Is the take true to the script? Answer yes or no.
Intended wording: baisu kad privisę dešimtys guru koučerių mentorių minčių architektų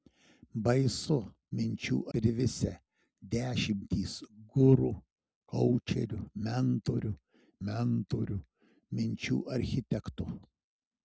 no